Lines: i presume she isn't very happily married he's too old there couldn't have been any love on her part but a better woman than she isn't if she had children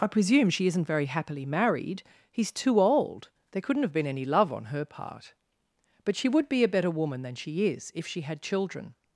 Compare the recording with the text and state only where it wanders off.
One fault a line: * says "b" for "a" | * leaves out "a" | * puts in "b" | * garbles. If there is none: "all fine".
* puts in "she would be"
* says "is" for "isn't"